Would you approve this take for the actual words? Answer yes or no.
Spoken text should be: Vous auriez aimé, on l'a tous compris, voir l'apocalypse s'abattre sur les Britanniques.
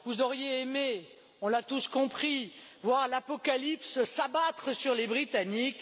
yes